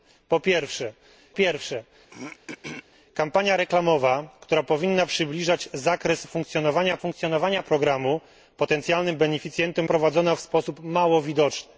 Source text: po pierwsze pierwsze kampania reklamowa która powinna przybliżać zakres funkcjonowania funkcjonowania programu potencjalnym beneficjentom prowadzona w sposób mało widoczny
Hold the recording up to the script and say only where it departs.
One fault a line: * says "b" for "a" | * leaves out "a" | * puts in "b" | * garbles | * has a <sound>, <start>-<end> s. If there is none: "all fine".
* has a throat clearing, 2.1-2.8 s